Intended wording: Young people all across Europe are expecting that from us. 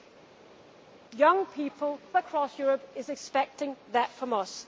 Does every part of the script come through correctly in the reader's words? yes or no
no